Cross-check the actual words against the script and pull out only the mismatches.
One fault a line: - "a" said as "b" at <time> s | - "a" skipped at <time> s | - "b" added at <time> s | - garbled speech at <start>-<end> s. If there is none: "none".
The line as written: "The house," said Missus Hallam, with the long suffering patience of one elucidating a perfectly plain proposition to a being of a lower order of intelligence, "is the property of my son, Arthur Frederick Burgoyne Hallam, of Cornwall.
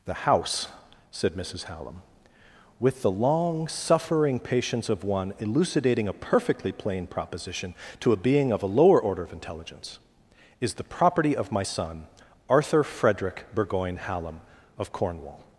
none